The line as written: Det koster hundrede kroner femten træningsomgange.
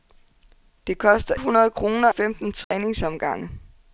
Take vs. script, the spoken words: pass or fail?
pass